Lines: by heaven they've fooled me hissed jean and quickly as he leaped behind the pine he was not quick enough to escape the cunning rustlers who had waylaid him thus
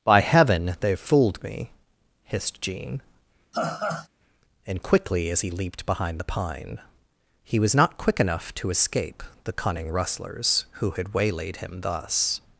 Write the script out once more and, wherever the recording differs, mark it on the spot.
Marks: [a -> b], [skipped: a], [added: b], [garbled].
by heaven they've fooled me hissed jean and quickly as he leaped behind the pine he was not quick enough to escape the cunning rustlers who had waylaid him thus